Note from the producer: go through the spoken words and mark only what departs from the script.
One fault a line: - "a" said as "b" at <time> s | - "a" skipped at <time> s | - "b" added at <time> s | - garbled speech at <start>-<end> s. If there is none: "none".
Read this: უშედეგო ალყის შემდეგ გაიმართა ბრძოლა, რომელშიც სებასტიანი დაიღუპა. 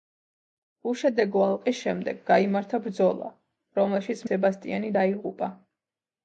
none